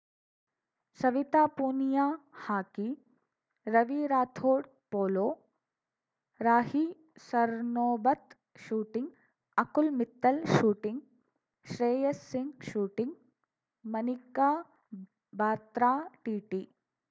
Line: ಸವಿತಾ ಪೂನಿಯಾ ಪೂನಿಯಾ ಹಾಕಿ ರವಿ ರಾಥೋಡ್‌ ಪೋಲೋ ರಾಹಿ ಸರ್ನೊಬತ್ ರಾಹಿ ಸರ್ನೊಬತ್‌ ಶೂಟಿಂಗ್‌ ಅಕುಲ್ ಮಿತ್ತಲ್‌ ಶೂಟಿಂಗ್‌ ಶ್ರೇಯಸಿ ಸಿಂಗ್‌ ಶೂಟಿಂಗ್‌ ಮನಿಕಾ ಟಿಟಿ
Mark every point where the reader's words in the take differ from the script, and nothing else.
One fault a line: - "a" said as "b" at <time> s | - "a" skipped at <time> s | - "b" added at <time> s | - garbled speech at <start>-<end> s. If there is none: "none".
- "ಪೂನಿಯಾ" skipped at 2.0 s
- "ರಾಹಿ ಸರ್ನೊಬತ್" skipped at 8.3 s
- "ಬಾತ್ರಾ" added at 15.3 s